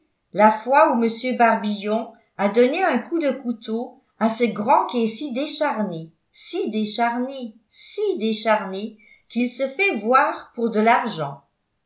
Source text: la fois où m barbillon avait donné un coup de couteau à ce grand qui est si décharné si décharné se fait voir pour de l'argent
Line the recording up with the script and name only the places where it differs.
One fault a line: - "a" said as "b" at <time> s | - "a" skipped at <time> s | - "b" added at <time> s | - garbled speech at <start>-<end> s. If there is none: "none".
- "avait" said as "a" at 2.4 s
- "si décharné qu'il" added at 7.7 s